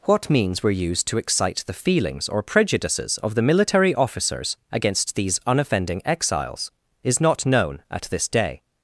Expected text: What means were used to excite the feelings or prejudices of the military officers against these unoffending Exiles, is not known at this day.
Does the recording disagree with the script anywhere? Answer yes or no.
no